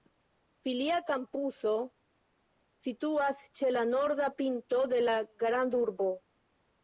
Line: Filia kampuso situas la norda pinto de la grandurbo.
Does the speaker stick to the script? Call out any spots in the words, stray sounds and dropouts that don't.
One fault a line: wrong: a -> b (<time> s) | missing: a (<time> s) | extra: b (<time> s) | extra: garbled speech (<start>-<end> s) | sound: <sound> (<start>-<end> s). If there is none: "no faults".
extra: ĉe (3.6 s)